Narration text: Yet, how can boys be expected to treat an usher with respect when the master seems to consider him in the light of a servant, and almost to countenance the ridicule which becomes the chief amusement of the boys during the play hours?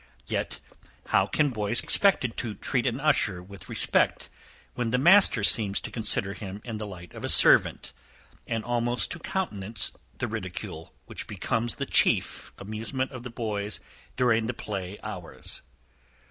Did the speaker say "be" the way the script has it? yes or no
no